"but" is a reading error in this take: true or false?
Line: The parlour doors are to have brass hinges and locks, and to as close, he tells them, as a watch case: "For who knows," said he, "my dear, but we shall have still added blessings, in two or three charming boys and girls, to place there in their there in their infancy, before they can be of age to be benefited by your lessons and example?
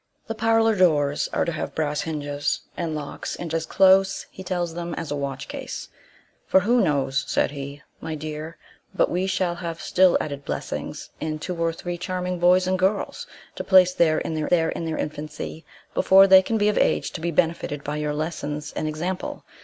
false